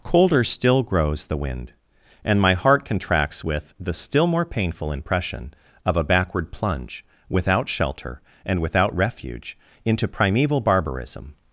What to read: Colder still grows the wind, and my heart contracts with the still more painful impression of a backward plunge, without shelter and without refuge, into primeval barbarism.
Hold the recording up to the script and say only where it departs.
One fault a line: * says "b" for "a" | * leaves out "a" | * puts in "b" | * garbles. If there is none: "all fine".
all fine